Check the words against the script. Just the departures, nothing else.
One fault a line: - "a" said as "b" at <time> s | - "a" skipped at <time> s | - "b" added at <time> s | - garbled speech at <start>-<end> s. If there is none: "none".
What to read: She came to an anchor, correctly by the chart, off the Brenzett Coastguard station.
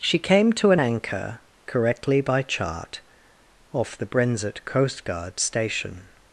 - "the" skipped at 2.4 s